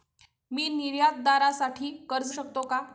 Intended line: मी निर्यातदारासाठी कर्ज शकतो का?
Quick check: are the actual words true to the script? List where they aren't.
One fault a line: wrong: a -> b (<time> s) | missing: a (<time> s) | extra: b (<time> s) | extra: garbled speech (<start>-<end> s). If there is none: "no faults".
no faults